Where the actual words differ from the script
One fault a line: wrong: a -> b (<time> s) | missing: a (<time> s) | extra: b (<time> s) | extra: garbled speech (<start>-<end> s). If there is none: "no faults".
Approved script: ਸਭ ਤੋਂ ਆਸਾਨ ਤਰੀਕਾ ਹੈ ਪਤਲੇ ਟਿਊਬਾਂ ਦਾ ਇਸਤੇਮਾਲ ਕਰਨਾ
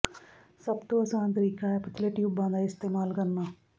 no faults